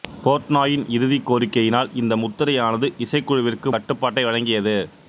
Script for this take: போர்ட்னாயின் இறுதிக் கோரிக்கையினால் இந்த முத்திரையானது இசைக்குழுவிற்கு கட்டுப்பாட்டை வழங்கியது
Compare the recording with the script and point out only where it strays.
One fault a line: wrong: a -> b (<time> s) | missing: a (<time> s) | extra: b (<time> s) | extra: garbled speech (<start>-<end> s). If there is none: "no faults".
no faults